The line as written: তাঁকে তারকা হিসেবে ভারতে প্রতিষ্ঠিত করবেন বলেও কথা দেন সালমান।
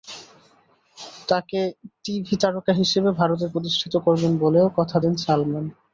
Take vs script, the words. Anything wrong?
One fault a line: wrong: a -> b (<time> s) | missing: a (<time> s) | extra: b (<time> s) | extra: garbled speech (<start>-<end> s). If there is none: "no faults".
extra: টিভি (2.0 s)